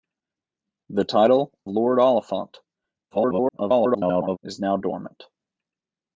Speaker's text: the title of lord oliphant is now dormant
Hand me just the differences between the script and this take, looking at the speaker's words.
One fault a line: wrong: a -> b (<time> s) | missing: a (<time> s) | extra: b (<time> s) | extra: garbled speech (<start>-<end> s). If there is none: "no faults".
missing: of (1.5 s)
extra: garbled speech (3.1-4.4 s)